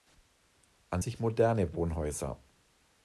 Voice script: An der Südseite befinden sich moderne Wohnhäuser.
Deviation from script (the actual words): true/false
true